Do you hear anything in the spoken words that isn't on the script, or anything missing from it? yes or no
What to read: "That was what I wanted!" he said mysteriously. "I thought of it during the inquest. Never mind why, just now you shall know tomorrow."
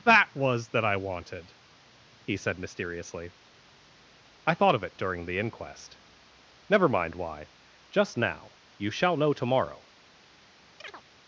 yes